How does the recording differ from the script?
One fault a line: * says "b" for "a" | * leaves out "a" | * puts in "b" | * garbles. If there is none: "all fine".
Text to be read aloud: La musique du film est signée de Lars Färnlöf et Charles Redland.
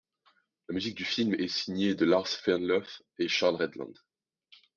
all fine